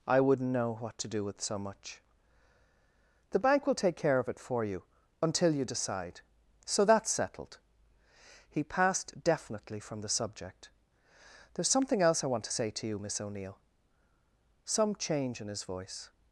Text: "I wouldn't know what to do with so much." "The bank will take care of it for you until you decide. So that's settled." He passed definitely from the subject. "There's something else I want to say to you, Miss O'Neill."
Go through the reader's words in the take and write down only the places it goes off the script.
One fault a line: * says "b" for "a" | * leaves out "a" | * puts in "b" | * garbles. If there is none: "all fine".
* puts in "Some change in his voice"